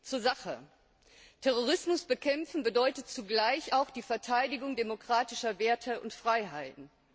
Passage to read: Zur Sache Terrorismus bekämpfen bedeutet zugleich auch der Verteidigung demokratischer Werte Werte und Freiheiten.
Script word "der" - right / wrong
wrong